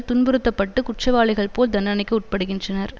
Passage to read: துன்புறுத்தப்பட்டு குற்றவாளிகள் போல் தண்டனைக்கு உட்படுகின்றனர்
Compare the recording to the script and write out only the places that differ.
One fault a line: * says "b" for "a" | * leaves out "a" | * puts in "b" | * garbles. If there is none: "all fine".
all fine